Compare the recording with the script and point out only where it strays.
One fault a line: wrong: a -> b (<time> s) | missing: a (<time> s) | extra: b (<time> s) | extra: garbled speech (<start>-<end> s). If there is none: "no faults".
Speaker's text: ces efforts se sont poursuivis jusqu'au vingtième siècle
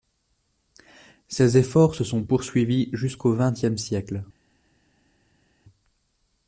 no faults